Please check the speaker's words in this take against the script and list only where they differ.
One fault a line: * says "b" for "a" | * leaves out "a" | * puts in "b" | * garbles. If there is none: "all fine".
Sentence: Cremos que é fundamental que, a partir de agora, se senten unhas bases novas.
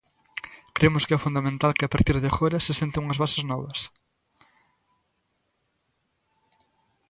all fine